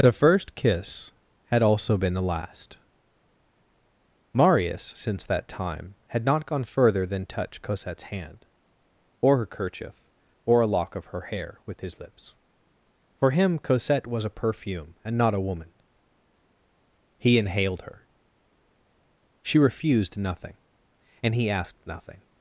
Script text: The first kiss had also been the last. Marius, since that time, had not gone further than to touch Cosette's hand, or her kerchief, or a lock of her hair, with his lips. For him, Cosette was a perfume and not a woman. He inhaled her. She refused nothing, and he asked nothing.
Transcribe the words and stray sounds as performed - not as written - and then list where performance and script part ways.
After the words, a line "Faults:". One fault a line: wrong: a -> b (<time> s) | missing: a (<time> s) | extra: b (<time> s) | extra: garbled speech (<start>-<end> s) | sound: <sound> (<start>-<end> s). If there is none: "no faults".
The first kiss had also been the last. Marius, since that time, had not gone further than touch Cosette's hand, or her kerchief, or a lock of her hair, with his lips. For him, Cosette was a perfume and not a woman. He inhaled her. She refused nothing, and he asked nothing.
Faults:
missing: to (7.3 s)